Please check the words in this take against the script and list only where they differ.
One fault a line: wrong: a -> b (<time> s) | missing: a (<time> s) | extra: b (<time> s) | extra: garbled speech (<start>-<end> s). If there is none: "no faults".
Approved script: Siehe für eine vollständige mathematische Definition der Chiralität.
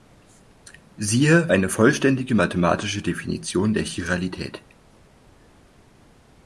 missing: für (1.5 s)